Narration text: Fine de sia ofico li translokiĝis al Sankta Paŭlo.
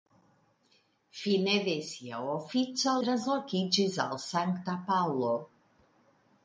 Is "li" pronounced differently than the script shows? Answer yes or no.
yes